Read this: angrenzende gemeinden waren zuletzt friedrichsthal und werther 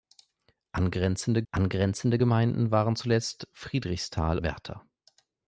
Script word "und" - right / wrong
wrong